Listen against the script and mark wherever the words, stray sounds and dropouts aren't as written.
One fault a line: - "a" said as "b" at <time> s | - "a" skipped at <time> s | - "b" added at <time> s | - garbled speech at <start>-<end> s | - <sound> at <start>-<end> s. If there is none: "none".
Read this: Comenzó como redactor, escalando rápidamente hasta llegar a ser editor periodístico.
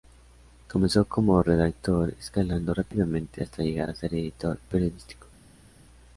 none